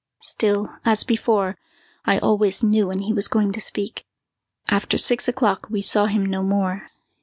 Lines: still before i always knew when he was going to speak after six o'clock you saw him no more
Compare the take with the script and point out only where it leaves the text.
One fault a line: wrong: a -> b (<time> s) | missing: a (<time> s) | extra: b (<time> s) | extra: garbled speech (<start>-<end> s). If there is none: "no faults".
extra: as (0.8 s)
wrong: you -> we (5.7 s)